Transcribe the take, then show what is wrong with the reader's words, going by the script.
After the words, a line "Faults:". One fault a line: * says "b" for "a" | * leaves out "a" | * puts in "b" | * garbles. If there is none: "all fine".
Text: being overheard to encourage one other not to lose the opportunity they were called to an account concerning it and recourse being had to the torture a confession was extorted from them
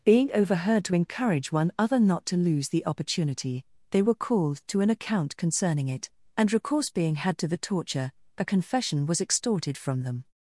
being overheard to encourage one other not to lose the opportunity they were called to an account concerning it and recourse being had to the torture a confession was extorted from them
Faults:
all fine